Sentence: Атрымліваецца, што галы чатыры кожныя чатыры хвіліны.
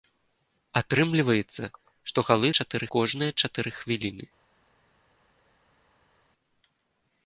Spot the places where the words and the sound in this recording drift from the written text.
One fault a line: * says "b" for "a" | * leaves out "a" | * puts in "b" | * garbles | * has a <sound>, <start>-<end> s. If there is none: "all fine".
all fine